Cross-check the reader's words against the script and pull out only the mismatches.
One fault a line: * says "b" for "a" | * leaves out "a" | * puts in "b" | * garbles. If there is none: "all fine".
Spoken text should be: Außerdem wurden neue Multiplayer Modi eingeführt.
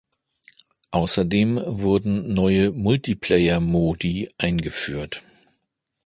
all fine